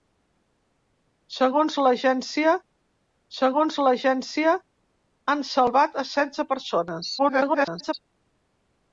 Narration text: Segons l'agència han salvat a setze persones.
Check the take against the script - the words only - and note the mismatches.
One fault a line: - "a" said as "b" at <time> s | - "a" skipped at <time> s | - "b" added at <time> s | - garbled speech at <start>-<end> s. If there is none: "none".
- "segons l'agència" added at 3.4 s
- garbled speech at 7.2-7.9 s